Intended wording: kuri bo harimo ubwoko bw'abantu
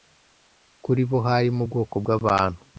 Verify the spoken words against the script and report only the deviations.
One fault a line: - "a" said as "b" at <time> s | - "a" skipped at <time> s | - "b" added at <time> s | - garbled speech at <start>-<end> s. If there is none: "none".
none